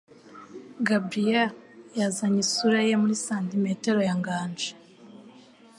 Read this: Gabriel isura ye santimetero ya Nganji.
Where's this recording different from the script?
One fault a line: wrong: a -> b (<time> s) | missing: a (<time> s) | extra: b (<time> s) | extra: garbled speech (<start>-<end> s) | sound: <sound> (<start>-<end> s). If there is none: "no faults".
extra: yazanye (2.0 s)
extra: muri (3.0 s)